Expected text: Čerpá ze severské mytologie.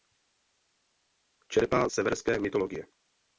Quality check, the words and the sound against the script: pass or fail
fail